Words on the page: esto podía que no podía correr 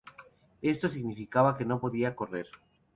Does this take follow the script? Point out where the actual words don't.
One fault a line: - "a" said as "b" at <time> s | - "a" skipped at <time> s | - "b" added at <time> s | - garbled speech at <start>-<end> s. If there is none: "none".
- "podía" said as "significaba" at 0.9 s